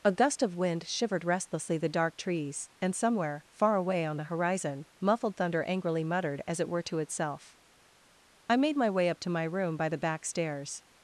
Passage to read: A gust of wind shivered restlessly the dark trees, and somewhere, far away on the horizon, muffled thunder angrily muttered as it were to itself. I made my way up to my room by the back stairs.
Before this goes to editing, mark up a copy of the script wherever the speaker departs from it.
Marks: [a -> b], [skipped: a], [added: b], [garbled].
A gust of wind shivered restlessly the dark trees, and somewhere, far away on the horizon, muffled thunder angrily muttered as it were to itself. I made my way up to my room by the back stairs.